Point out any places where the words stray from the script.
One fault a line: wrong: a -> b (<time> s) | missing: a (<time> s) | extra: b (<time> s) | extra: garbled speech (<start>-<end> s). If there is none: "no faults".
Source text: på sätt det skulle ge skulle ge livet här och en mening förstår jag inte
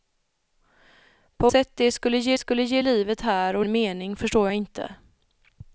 no faults